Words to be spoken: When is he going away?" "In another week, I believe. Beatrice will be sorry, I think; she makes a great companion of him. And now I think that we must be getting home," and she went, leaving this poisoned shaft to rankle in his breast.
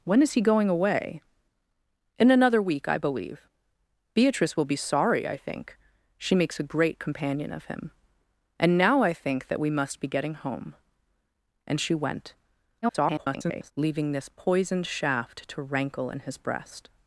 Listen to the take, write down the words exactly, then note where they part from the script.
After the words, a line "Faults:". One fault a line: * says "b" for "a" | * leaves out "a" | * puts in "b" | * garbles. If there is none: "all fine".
When is he going away?" "In another week, I believe. Beatrice will be sorry, I think; she makes a great companion of him. And now I think that we must be getting home," and she went, [garbled] leaving this poisoned shaft to rankle in his breast.
Faults:
* garbles